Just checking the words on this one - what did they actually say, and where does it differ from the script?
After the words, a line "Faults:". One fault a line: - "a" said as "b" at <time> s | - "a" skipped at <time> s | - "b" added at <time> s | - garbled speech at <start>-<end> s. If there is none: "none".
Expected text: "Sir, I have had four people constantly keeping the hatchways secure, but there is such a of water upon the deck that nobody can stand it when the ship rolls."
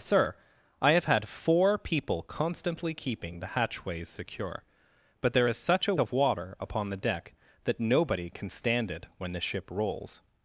"Sir, I have had four people constantly keeping the hatchways secure, but there is such a of water upon the deck that nobody can stand it when the ship rolls."
Faults:
none